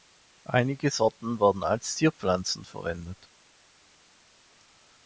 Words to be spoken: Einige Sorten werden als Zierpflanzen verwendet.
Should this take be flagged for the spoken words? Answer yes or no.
no